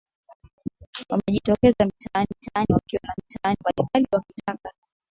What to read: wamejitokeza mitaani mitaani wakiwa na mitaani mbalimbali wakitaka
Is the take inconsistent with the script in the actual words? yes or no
no